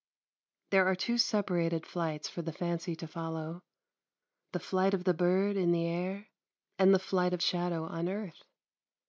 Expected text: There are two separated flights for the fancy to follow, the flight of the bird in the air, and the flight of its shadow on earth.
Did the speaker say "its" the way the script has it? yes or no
no